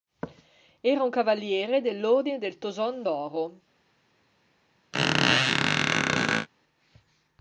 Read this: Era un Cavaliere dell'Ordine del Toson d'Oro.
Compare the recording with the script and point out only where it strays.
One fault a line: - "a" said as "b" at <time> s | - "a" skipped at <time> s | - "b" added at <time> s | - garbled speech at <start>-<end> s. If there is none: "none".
none